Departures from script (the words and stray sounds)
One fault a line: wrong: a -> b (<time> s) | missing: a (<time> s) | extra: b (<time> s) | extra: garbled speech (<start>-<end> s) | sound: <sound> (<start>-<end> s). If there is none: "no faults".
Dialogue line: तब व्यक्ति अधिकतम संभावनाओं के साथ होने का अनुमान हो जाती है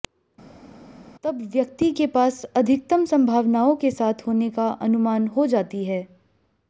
extra: के पास (1.9 s)